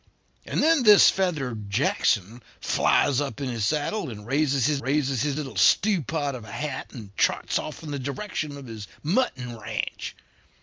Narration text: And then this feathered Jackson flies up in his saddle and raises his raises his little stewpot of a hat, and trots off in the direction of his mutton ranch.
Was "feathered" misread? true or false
false